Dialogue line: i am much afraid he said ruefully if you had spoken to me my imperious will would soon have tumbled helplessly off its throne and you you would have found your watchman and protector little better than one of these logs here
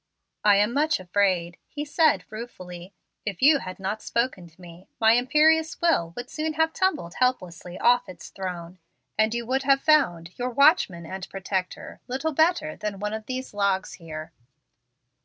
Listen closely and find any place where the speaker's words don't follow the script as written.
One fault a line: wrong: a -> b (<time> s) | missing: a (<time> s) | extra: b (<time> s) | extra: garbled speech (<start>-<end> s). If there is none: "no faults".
extra: not (3.8 s)
missing: you (9.5 s)